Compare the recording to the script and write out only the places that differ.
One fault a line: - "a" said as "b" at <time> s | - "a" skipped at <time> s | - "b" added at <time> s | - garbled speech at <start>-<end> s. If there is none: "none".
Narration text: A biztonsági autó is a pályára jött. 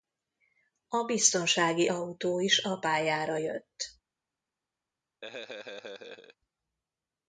none